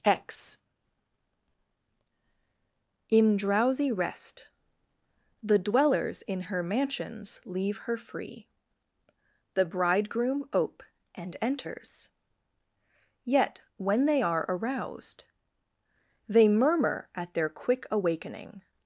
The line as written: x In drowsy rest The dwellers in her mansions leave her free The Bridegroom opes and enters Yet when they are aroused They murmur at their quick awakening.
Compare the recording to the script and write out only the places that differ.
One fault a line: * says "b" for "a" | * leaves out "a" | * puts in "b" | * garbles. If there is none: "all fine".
* says "ope" for "opes"